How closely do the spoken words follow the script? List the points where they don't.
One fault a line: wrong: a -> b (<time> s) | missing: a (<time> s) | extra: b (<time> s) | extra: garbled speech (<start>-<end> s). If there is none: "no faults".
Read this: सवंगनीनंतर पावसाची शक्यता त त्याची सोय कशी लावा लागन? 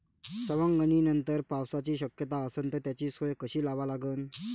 extra: असन (2.5 s)